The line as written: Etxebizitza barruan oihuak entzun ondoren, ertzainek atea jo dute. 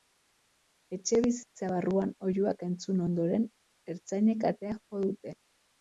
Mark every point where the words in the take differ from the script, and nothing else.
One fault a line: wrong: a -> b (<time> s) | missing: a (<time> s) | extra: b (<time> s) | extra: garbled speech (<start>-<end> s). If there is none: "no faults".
no faults